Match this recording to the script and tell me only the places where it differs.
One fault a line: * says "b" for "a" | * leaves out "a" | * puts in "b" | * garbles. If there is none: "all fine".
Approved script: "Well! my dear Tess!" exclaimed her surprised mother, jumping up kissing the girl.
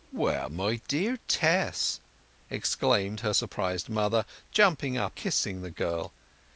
all fine